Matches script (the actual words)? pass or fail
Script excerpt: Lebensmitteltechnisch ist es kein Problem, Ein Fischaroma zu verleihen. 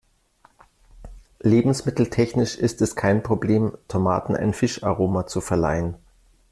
fail